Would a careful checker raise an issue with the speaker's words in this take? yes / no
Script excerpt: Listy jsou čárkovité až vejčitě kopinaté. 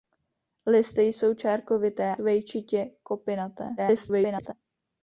yes